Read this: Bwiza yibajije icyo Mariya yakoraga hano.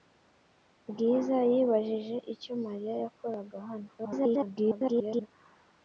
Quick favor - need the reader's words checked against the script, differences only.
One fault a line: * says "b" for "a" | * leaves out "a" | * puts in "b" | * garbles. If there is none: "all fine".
* garbles